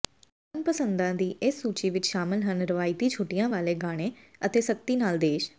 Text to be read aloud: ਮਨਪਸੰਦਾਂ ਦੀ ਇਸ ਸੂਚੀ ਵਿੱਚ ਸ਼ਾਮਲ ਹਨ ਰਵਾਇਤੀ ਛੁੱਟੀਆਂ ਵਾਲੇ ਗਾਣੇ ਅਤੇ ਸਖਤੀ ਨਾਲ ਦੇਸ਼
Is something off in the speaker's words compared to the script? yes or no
no